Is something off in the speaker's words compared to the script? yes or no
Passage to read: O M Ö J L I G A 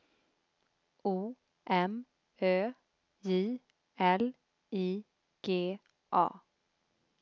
no